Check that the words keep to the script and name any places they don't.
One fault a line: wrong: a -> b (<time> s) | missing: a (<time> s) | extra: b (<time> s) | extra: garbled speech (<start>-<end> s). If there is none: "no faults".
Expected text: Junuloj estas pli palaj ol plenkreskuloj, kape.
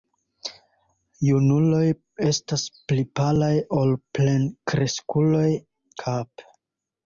no faults